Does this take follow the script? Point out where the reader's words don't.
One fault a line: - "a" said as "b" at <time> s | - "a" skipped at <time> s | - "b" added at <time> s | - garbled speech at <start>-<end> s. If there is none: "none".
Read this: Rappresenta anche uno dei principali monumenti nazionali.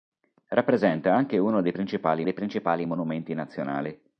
- "dei principali" added at 2.2 s